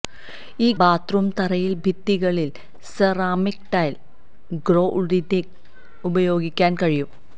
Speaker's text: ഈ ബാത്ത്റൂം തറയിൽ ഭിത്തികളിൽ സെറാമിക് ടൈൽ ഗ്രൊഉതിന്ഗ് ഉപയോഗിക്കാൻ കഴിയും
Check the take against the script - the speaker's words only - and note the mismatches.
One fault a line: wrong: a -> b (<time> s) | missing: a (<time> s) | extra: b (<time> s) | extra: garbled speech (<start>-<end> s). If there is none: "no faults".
no faults